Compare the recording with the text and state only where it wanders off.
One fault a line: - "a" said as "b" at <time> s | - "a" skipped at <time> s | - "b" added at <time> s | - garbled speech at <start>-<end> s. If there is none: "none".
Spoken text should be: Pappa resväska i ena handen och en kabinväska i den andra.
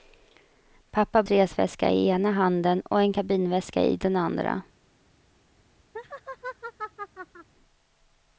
none